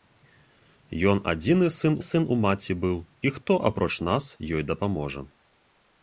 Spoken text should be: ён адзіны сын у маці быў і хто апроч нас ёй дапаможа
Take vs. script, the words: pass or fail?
fail